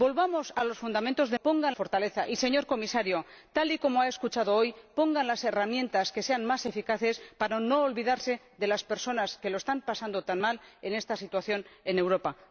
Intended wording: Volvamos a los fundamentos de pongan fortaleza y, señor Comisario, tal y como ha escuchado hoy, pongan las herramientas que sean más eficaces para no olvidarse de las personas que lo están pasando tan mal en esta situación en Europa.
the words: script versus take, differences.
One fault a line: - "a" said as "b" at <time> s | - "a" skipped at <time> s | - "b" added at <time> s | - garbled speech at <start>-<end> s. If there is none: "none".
none